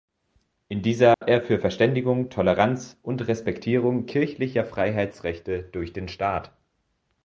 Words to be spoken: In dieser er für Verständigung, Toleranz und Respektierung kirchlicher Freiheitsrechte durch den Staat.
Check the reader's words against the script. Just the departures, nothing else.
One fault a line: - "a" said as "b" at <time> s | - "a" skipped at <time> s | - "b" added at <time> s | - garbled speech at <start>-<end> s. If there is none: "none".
none